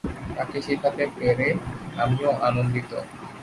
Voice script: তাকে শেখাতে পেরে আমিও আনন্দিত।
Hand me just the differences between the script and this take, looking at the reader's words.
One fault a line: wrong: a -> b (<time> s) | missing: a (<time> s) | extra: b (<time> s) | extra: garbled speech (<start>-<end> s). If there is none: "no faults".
no faults